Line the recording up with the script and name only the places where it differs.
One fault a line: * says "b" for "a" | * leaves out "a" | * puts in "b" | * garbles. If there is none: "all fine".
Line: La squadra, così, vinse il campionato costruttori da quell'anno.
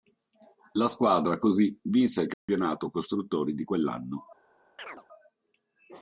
* says "di" for "da"